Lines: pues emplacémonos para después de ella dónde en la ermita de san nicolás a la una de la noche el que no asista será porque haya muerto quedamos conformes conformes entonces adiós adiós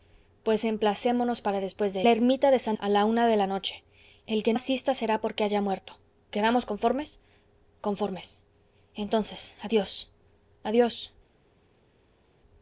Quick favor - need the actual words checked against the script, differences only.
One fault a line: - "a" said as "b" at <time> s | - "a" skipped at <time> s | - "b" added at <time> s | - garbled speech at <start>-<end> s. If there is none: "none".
- "ella dónde en" skipped at 2.0 s
- "nicolás" skipped at 2.8 s
- "no" skipped at 4.5 s